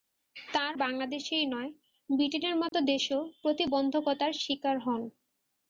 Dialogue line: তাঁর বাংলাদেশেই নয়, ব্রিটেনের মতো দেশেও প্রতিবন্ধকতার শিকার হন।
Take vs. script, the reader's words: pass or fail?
pass